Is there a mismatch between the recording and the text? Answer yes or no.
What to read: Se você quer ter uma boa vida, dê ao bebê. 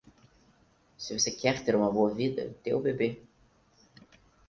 no